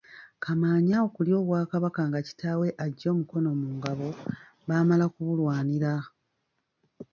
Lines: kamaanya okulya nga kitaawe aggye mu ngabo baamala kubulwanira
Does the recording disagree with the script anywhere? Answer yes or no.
yes